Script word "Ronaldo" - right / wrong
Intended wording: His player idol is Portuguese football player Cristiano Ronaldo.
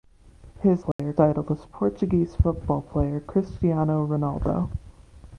right